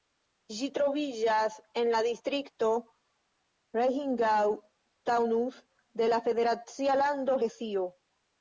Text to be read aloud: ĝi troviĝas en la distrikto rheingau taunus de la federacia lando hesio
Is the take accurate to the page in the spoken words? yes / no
yes